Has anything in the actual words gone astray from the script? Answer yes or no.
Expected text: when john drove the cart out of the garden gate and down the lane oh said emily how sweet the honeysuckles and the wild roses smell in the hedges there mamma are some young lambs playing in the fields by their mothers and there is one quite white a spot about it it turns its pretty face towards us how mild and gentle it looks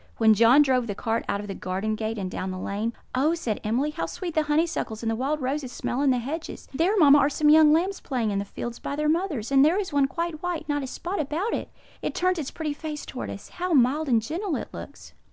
yes